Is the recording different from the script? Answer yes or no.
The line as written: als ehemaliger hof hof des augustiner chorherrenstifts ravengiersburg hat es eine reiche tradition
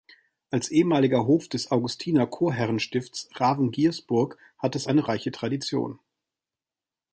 yes